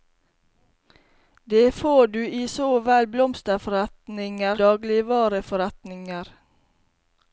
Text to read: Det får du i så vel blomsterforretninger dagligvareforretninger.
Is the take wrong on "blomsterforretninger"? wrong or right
right